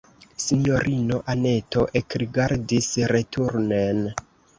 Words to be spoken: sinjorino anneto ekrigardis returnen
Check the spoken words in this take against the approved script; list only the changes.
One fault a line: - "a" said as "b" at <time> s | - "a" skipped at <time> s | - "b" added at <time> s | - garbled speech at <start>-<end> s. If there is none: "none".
none